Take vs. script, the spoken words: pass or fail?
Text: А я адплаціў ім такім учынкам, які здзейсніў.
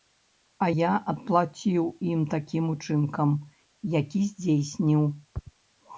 pass